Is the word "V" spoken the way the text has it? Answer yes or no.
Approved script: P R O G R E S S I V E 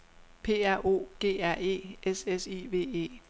yes